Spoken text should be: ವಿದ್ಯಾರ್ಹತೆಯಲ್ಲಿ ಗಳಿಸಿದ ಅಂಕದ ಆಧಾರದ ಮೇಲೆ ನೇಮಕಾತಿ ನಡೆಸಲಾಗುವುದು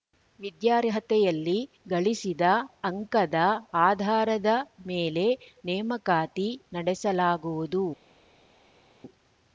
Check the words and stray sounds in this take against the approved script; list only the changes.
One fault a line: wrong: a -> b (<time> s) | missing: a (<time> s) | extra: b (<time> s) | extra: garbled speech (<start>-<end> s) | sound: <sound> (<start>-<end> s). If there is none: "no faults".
no faults